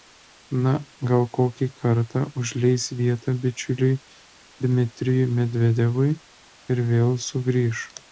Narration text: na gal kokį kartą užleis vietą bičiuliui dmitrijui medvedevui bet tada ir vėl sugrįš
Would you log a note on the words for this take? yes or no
yes